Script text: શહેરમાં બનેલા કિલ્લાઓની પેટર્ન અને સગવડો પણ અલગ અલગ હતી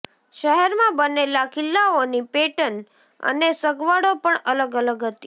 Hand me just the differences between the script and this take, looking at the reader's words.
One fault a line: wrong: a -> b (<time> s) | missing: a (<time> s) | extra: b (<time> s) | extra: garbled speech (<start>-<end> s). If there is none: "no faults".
no faults